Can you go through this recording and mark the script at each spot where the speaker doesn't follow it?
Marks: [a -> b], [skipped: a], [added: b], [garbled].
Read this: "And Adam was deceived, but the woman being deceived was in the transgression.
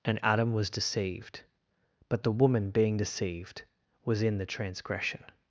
"And Adam was deceived, but the woman being deceived was in the transgression.